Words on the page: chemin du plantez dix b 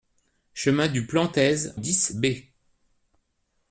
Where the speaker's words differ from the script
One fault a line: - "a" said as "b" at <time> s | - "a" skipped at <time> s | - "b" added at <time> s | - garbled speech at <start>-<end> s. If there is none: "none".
none